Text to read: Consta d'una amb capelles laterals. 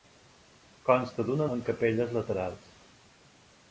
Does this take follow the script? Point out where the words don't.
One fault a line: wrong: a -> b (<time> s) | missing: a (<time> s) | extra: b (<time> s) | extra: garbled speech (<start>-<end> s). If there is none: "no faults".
no faults